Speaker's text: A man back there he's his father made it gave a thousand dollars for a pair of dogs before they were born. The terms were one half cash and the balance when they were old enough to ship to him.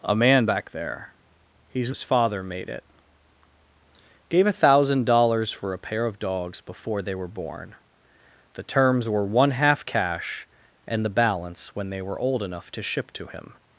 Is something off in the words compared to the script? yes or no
no